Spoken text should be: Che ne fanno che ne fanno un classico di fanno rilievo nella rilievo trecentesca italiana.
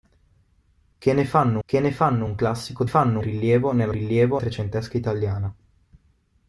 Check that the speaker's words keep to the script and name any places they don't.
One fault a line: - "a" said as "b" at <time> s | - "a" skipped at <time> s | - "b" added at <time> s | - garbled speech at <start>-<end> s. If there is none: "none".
none